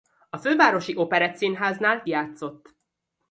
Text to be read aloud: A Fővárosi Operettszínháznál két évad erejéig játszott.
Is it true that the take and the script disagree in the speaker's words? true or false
true